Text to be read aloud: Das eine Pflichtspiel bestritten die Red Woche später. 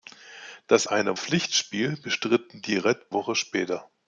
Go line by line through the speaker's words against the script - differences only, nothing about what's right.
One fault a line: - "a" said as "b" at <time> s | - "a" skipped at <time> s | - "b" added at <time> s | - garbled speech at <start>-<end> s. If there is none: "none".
none